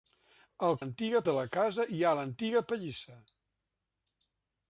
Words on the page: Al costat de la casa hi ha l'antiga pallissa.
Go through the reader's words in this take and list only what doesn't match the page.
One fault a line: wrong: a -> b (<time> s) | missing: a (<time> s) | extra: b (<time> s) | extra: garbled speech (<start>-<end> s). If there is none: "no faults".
wrong: costat -> l'antiga (0.8 s)